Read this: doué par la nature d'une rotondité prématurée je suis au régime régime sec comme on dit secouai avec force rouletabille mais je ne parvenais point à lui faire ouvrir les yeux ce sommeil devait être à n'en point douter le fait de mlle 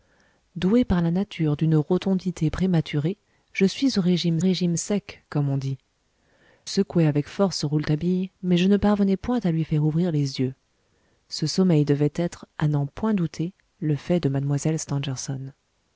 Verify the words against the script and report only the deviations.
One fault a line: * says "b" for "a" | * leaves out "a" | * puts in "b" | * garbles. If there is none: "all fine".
all fine